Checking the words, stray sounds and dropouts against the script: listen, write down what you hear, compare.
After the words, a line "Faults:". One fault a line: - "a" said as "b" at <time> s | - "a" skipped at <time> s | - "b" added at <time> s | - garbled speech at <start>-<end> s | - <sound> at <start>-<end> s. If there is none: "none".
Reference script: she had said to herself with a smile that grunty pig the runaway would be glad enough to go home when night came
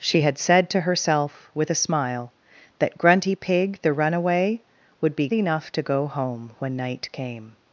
she had said to herself with a smile that grunty pig the runaway would be enough to go home when night came
Faults:
- "glad" skipped at 5.3 s